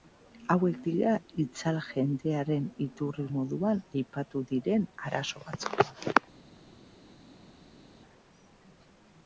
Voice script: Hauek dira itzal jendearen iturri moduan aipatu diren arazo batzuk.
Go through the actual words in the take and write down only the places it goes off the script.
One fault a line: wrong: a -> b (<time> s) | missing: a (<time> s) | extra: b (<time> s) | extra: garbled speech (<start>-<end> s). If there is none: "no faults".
no faults